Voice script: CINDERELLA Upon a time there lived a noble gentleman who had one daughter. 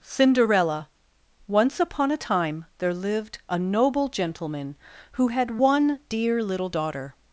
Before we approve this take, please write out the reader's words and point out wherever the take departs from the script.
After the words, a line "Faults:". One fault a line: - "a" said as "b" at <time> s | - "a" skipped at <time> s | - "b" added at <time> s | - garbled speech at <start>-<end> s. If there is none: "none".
CINDERELLA Once upon a time there lived a noble gentleman who had one dear little daughter.
Faults:
- "Once" added at 1.5 s
- "dear little" added at 6.1 s